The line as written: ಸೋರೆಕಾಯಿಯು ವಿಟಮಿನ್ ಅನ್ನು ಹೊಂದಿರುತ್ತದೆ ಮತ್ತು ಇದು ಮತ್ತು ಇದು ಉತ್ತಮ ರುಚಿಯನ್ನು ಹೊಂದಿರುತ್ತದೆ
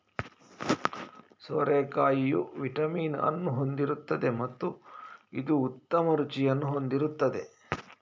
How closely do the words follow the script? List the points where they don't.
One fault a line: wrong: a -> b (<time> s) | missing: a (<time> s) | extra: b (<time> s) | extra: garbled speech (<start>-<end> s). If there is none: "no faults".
missing: ಮತ್ತು ಇದು (5.6 s)